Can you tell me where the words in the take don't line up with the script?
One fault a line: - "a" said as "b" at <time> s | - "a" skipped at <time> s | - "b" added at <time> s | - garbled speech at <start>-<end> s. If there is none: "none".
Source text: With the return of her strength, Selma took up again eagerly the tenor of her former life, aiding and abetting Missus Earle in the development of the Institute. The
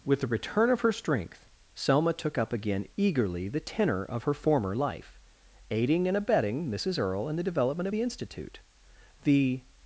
none